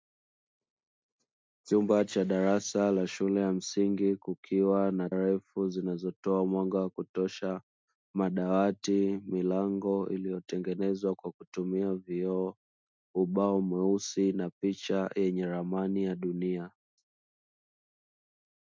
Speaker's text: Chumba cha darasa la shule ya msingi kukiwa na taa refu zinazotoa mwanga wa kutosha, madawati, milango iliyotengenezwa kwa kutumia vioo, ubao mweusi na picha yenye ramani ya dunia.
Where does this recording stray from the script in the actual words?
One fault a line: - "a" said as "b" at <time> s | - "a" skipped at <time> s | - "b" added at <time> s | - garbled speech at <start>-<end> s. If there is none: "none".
- "taa" skipped at 5.1 s